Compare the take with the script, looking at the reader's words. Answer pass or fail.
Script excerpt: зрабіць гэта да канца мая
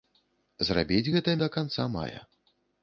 pass